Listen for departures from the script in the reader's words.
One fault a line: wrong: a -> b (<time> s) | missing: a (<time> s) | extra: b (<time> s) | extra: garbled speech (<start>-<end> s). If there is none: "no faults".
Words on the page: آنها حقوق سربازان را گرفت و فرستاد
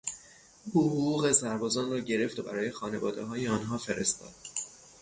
wrong: آنها -> او (0.7 s)
extra: برای خانوادههای آنها (2.4 s)